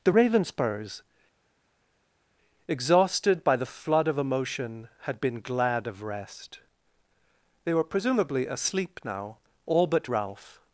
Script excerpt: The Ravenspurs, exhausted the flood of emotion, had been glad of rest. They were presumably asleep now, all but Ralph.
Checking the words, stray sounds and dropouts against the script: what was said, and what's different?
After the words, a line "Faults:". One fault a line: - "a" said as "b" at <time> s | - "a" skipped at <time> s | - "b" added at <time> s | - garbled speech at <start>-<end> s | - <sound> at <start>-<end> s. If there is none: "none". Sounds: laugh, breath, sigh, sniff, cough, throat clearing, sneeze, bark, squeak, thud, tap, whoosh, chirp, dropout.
The Ravenspurs, exhausted by the flood of emotion, had been glad of rest. They were presumably asleep now, all but Ralph.
Faults:
- "by" added at 3.4 s